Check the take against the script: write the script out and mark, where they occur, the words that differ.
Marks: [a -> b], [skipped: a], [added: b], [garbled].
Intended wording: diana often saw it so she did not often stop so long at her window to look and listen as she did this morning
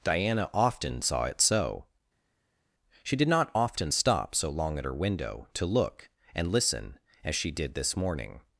diana often saw it so she did not often stop so long at her window to look and listen as she did this morning